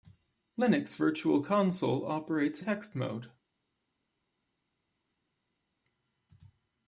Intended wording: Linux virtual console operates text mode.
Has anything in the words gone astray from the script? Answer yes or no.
no